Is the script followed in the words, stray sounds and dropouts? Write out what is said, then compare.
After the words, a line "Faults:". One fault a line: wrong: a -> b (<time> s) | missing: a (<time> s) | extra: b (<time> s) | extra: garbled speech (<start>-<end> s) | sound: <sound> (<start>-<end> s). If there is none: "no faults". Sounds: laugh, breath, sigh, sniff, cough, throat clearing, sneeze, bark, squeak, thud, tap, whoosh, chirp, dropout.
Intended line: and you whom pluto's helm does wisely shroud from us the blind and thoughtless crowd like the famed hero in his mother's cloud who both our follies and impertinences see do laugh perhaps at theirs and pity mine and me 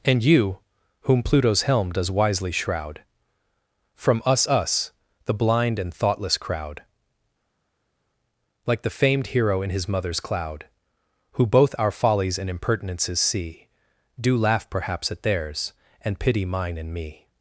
and you whom pluto's helm does wisely shroud from us us the blind and thoughtless crowd like the famed hero in his mother's cloud who both our follies and impertinences see do laugh perhaps at theirs and pity mine and me
Faults:
extra: us (4.5 s)